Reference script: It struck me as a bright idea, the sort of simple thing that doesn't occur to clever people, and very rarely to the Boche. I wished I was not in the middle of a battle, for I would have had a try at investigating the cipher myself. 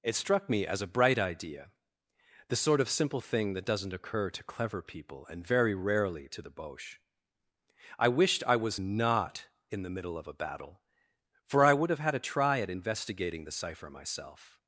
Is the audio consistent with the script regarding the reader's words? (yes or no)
yes